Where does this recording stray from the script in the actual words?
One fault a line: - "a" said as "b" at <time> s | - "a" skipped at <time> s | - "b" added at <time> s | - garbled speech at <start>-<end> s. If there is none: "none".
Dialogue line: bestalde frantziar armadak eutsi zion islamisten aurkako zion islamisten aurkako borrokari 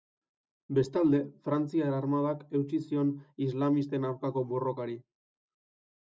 - "zion islamisten aurkako" skipped at 4.4 s